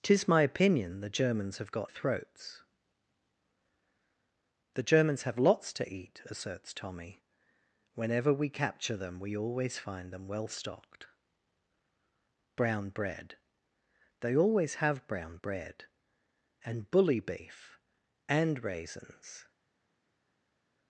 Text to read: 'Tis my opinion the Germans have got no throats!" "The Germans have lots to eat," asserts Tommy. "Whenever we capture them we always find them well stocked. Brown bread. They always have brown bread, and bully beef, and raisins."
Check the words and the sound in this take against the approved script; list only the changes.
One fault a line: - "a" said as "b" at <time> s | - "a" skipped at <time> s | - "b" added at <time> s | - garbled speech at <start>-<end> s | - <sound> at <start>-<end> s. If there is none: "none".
- "no" skipped at 1.9 s